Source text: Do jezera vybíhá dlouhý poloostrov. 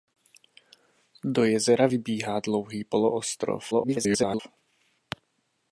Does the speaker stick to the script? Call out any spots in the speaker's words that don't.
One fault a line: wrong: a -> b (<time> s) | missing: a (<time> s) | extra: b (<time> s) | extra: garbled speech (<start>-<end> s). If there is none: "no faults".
extra: garbled speech (3.7-4.4 s)